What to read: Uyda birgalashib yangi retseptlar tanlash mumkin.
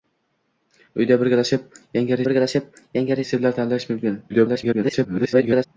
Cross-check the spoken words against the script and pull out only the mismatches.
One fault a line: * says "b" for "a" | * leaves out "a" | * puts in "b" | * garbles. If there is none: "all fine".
* puts in "birgalashib yangi"
* garbles